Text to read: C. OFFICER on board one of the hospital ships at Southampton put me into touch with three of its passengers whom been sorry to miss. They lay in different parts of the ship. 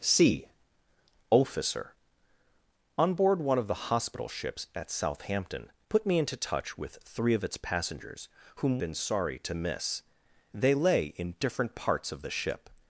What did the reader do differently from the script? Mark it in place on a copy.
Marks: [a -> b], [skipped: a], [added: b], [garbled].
C. OFFICER on board one of the hospital ships at Southampton put me into touch with three of its passengers whom been sorry to miss. They lay in different parts of the ship.